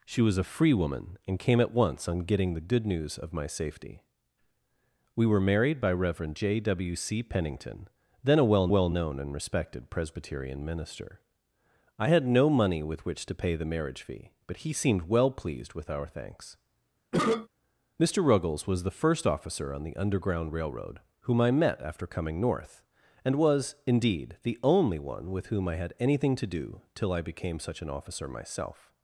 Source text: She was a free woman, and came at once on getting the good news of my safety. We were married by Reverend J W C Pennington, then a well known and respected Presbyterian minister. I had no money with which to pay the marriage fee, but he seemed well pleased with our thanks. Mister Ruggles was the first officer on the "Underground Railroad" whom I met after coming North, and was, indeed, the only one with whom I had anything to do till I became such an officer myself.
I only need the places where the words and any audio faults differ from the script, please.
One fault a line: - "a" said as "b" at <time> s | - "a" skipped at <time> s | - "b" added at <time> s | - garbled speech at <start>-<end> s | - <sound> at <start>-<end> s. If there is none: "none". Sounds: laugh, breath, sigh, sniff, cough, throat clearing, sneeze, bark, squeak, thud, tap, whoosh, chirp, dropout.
- "well" added at 8.7 s
- cough at 17.1-17.5 s